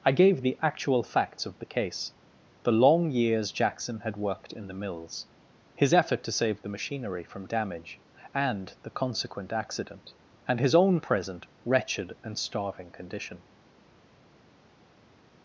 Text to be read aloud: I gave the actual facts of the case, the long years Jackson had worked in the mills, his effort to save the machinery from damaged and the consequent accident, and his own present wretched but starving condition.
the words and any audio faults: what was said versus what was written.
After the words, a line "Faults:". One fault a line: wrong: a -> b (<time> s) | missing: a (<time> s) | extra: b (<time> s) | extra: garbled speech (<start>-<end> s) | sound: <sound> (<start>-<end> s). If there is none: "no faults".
I gave the actual facts of the case, the long years Jackson had worked in the mills, his effort to save the machinery from damage and the consequent accident, and his own present wretched and starving condition.
Faults:
wrong: damaged -> damage (7.5 s)
wrong: but -> and (12.2 s)